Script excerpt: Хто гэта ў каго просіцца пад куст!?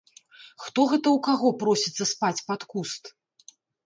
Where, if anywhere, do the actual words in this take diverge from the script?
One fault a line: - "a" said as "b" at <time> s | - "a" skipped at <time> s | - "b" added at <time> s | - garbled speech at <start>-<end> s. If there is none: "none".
- "спаць" added at 2.1 s